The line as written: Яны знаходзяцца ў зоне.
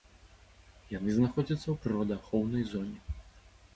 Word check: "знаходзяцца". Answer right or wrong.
right